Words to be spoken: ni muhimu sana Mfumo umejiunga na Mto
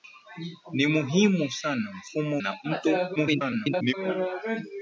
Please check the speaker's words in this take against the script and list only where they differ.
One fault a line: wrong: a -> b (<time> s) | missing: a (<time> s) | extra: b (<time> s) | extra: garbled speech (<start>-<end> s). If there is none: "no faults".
missing: umejiunga (2.4 s)
extra: garbled speech (3.2-3.9 s)